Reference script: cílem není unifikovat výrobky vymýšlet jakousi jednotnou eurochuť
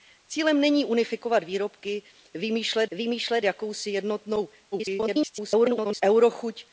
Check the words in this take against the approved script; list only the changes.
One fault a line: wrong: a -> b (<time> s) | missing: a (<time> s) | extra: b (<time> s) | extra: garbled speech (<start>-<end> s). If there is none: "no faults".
extra: vymýšlet (2.9 s)
extra: garbled speech (4.7-6.0 s)